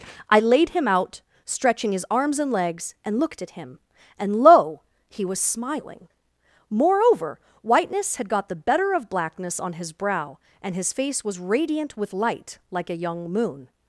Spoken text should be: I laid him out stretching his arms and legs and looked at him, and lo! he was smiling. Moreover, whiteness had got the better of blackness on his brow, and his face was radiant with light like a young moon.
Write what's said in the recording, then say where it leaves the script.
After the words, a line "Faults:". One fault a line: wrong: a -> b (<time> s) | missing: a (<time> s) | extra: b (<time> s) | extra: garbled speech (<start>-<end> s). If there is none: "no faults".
I laid him out stretching his arms and legs and looked at him, and lo! he was smiling. Moreover, whiteness had got the better of blackness on his brow, and his face was radiant with light like a young moon.
Faults:
no faults